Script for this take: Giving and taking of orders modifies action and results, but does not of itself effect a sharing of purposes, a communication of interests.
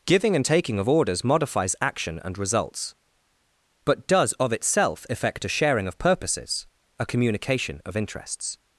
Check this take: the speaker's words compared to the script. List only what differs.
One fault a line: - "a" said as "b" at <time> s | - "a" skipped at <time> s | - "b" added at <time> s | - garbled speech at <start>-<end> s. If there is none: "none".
- "not" skipped at 4.3 s